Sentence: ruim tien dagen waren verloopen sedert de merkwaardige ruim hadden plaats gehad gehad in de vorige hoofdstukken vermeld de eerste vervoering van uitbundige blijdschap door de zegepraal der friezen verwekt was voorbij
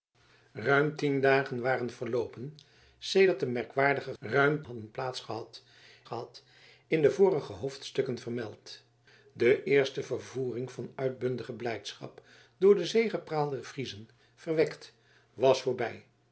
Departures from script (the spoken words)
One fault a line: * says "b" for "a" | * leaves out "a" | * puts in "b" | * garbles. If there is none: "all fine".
all fine